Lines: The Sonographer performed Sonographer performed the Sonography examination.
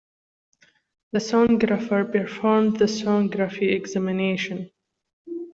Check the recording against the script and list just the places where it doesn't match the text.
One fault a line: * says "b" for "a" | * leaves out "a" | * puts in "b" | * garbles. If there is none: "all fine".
* leaves out "Sonographer performed"